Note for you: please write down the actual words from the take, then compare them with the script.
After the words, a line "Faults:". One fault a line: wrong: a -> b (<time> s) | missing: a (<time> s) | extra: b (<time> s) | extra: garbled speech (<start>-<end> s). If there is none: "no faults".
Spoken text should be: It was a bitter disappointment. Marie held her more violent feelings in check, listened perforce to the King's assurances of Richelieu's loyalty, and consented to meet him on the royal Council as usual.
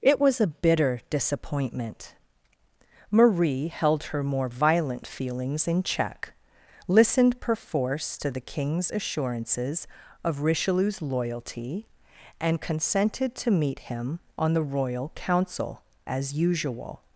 It was a bitter disappointment. Marie held her more violent feelings in check, listened perforce to the King's assurances of Richelieu's loyalty, and consented to meet him on the royal Council as usual.
Faults:
no faults